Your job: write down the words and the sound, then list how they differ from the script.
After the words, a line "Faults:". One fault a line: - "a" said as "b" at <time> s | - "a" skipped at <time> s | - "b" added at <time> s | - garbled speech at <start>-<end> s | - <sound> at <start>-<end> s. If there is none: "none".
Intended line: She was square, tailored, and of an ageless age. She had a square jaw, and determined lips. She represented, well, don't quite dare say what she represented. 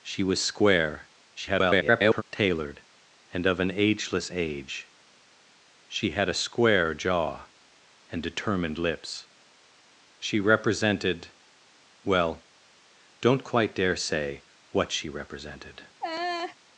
She was square, [garbled] tailored, and of an ageless age. She had a square jaw, and determined lips. She represented, well, don't quite dare say what she represented.
Faults:
- garbled speech at 1.4-2.2 s
- laugh at 16.0-16.6 s